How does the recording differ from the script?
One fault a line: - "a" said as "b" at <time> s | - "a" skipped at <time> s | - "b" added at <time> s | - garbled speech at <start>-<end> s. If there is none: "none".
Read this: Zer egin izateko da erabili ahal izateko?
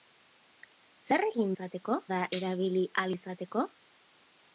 none